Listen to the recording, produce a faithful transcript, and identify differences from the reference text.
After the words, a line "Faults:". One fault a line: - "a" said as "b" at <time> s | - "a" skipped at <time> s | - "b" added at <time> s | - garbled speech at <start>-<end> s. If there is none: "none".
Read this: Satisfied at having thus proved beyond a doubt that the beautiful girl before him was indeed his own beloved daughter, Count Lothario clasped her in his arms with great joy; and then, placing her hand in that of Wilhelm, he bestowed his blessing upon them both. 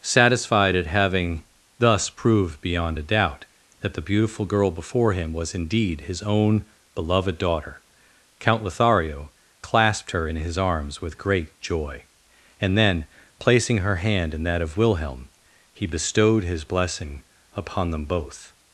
Satisfied at having thus proved beyond a doubt that the beautiful girl before him was indeed his own beloved daughter, Count Lothario clasped her in his arms with great joy; and then, placing her hand in that of Wilhelm, he bestowed his blessing upon them both.
Faults:
none